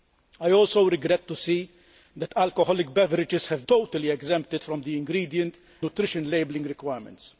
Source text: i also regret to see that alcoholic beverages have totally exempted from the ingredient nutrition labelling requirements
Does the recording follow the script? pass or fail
pass